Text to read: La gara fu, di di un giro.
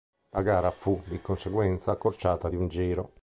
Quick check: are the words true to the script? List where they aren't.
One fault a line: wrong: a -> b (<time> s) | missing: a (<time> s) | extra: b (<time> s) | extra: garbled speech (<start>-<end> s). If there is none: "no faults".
extra: conseguenza accorciata (1.2 s)